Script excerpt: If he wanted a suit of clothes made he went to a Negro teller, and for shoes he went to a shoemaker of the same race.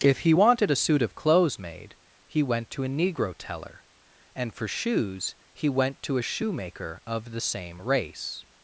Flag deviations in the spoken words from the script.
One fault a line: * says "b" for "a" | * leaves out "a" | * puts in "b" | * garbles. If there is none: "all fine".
all fine